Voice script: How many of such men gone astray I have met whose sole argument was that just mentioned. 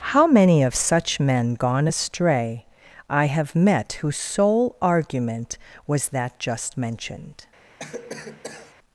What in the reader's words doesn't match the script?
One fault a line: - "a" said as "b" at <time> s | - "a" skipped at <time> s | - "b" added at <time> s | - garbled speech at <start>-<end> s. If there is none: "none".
none